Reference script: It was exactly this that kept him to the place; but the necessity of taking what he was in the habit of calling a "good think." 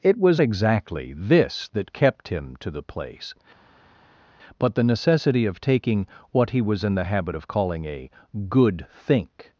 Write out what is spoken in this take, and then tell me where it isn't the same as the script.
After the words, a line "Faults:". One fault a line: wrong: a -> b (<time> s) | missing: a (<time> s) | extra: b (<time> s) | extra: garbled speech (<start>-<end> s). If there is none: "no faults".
It was exactly this that kept him to the place; but the necessity of taking what he was in the habit of calling a "good think."
Faults:
no faults